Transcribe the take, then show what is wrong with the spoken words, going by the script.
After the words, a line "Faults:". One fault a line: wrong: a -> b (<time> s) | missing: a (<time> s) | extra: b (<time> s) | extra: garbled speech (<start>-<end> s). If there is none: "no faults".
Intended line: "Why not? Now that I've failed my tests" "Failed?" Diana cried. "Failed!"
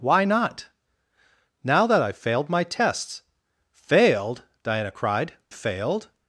"Why not? Now that I've failed my tests" "Failed?" Diana cried. "Failed!"
Faults:
no faults